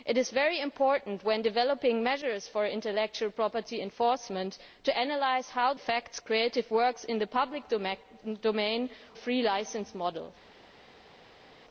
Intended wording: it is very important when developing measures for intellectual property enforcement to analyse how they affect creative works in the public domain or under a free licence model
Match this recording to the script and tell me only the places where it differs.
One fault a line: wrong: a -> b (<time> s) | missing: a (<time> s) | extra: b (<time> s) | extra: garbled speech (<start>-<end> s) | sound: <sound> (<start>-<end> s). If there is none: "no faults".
missing: they (5.7 s)
missing: or under (8.9 s)